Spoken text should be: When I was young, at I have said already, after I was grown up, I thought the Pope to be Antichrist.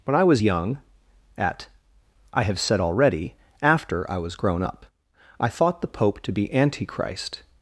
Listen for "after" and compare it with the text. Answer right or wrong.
right